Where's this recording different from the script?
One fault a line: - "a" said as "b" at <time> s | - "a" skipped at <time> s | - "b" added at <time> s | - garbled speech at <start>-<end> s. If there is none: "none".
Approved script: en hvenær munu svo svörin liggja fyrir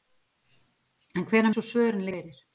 - "munu" skipped at 1.5 s
- "liggja" skipped at 2.1 s